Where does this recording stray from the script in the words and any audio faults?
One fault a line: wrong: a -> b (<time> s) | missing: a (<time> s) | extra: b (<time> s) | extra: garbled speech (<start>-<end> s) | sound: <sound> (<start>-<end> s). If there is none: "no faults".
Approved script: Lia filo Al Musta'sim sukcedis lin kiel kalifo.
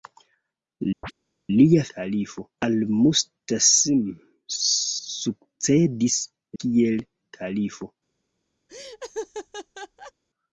sound: chirp (1.0-1.1 s)
wrong: filo -> kalifo (2.0 s)
missing: lin (6.2 s)
sound: laugh (8.7-10.1 s)